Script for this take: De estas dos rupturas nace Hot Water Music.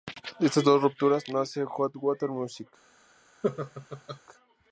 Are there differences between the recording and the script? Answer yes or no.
no